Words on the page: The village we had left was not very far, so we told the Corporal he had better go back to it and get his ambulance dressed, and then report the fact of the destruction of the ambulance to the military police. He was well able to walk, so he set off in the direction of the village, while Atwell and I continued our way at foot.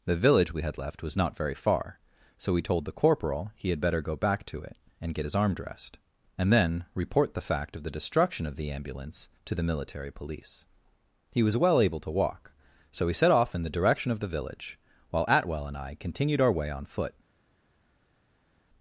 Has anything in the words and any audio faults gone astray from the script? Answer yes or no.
yes